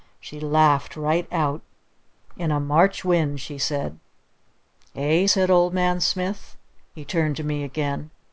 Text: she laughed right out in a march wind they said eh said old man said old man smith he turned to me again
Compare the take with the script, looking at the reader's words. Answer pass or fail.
fail